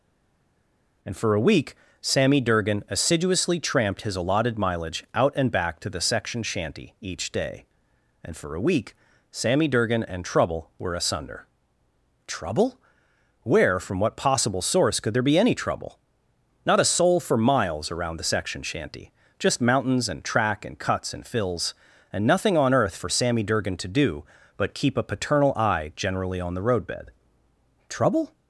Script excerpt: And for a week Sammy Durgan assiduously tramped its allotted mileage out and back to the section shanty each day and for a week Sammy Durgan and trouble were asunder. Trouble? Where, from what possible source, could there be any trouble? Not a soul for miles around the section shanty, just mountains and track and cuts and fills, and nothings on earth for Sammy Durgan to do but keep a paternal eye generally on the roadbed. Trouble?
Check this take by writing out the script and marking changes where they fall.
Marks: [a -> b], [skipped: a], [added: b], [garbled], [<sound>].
And for a week Sammy Durgan assiduously tramped [its -> his] allotted mileage out and back to the section shanty each day and for a week Sammy Durgan and trouble were asunder. Trouble? Where, from what possible source, could there be any trouble? Not a soul for miles around the section shanty, just mountains and track and cuts and fills, and [nothings -> nothing] on earth for Sammy Durgan to do but keep a paternal eye generally on the roadbed. Trouble?